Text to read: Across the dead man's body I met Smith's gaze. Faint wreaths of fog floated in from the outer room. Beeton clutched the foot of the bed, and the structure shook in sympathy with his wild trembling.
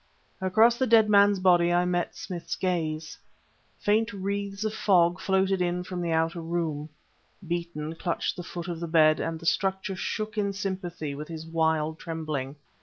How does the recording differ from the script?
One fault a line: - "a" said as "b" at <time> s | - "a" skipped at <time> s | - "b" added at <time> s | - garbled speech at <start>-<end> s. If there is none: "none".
none